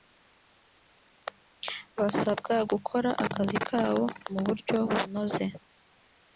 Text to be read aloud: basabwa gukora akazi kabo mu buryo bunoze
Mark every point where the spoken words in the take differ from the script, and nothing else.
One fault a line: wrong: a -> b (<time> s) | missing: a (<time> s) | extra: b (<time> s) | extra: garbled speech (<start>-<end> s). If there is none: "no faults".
no faults